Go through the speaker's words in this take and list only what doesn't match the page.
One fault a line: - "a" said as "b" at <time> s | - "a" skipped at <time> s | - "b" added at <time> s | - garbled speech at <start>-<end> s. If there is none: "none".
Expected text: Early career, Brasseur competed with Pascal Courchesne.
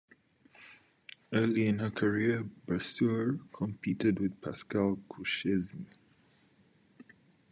- "in her" added at 1.7 s